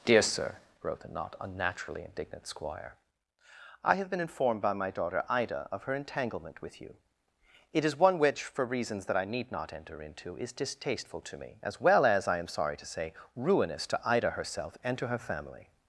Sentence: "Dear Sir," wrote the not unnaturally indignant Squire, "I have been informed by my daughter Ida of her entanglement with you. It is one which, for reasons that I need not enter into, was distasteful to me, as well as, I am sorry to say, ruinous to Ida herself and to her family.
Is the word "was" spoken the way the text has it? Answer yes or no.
no